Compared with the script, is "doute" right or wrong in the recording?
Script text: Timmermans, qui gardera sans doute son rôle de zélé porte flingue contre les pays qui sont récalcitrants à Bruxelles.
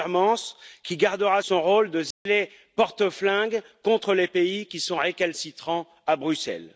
wrong